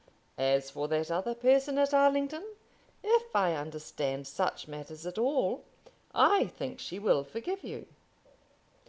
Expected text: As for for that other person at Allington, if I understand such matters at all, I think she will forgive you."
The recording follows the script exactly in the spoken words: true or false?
false